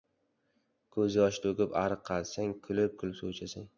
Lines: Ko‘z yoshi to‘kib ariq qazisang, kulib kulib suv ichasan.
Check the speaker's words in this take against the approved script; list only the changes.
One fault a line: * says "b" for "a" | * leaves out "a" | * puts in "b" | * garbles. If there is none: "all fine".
all fine